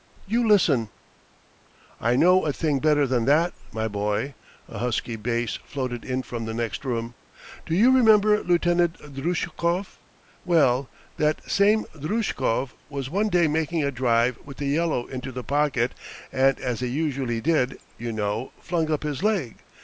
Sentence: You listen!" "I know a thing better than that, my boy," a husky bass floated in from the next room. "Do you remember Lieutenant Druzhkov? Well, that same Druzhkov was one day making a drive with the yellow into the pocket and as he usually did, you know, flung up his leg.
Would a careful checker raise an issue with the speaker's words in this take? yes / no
no